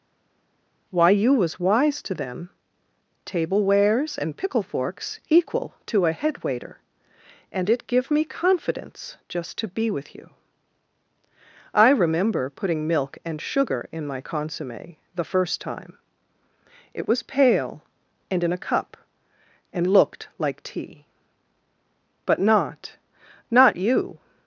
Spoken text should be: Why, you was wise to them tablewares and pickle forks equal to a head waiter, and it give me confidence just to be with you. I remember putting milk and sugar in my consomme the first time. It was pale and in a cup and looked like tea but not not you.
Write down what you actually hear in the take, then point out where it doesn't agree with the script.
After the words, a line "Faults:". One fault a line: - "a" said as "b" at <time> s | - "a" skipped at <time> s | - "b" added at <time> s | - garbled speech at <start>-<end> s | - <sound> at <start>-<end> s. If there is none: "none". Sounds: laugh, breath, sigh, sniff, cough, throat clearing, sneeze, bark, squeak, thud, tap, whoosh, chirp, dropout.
Why, you was wise to them tablewares and pickle forks equal to a head waiter, and it give me confidence just to be with you. I remember putting milk and sugar in my consomme the first time. It was pale and in a cup and looked like tea but not not you.
Faults:
none